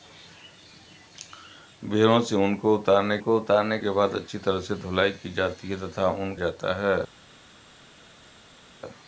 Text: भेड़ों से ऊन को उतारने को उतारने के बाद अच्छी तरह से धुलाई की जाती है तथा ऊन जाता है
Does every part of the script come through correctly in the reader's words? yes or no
yes